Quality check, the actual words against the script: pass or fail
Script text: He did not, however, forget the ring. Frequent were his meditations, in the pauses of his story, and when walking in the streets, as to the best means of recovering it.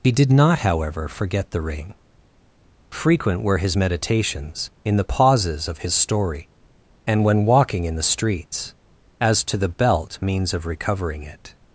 fail